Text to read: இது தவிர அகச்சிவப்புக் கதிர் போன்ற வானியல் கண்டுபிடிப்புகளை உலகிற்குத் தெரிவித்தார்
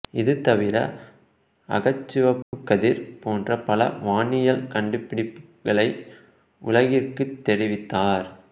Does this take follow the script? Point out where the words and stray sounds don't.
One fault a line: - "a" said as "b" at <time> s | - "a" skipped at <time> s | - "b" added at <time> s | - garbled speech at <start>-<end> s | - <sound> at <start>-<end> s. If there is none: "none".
- dropout at 2.4-2.5 s
- "பல" added at 3.6 s